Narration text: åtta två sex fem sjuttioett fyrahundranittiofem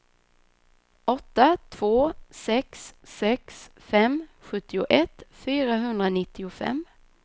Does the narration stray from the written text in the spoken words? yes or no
yes